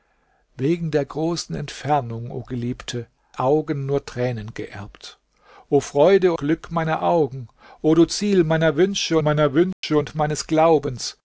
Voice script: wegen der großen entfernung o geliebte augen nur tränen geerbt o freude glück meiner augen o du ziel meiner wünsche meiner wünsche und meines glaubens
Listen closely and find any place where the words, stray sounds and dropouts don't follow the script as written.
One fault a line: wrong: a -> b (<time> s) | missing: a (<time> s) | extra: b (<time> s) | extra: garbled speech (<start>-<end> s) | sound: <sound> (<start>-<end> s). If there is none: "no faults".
sound: dropout (9.7-9.8 s)